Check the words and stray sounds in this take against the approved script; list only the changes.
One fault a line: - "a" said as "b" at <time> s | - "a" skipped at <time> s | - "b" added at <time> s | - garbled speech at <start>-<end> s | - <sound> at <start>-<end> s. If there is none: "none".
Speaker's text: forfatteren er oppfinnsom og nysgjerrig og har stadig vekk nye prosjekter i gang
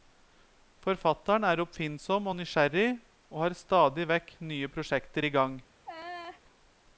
- laugh at 5.8-6.4 s